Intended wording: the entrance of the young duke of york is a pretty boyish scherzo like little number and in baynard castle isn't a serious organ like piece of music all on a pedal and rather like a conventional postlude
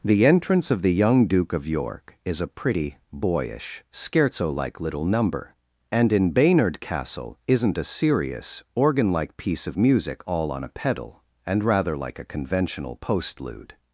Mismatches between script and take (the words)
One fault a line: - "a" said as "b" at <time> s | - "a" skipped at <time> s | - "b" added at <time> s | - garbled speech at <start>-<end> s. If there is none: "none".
none